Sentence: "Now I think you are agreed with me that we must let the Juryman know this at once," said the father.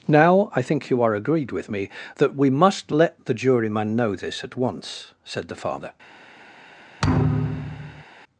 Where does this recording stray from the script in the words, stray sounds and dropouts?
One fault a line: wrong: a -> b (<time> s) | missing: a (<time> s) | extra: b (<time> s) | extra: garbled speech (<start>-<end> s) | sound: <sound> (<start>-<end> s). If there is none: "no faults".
sound: thud (7.0-8.0 s)